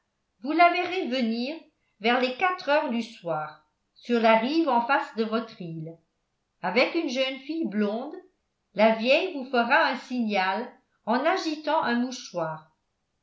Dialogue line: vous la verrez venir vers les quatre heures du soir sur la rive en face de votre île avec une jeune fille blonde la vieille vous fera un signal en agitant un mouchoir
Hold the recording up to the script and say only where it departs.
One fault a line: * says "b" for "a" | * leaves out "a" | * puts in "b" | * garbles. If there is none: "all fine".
all fine